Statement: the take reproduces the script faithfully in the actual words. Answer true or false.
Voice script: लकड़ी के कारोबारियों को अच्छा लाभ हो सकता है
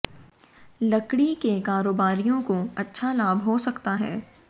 true